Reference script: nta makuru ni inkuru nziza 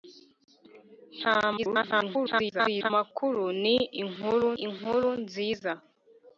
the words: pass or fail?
fail